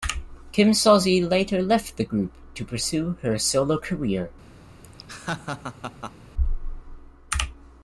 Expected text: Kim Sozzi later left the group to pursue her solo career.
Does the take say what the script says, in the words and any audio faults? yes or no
no